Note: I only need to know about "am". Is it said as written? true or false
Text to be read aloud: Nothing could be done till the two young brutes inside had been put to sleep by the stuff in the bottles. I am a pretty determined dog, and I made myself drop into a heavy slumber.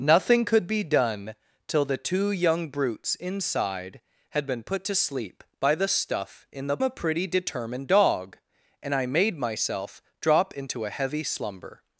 false